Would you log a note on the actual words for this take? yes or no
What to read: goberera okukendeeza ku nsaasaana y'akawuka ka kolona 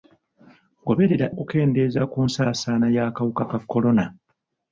no